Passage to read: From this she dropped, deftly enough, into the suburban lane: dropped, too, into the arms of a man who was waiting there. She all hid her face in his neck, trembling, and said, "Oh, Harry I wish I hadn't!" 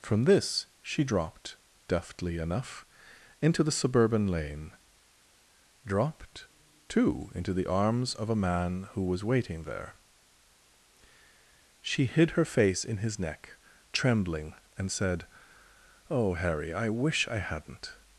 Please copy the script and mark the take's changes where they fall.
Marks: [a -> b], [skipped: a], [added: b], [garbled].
From this she dropped, deftly enough, into the suburban lane: dropped, too, into the arms of a man who was waiting there. She [skipped: all] hid her face in his neck, trembling, and said, "Oh, Harry I wish I hadn't!"